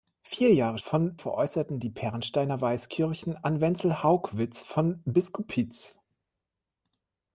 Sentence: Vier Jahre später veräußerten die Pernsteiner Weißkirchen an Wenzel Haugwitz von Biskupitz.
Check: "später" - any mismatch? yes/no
yes